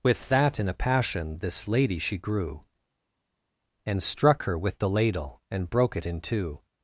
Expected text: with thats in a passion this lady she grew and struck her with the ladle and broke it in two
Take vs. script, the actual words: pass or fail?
fail